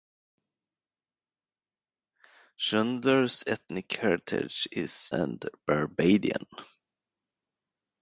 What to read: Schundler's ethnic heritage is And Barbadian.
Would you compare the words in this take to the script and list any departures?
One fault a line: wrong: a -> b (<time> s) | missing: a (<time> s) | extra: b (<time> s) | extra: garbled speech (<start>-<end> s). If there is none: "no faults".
no faults